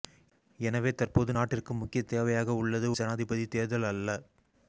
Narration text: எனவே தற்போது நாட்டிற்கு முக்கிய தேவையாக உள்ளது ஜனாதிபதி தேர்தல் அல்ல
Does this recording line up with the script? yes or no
yes